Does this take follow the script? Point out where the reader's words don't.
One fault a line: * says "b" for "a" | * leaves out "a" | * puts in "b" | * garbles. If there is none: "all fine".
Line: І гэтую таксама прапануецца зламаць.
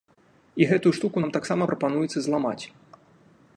* puts in "штуку нам"